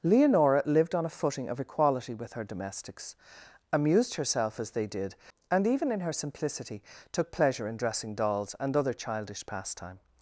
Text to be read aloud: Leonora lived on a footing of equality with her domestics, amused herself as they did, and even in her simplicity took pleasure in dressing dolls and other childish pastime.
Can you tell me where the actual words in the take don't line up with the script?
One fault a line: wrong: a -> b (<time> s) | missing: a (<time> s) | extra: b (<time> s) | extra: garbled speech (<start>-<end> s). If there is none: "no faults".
no faults